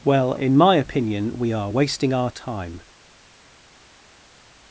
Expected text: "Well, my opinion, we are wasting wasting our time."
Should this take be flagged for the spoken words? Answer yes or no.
yes